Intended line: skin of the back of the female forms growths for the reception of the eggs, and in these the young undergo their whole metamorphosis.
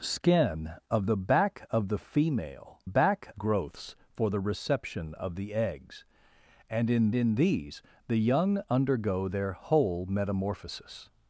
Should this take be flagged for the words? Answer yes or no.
yes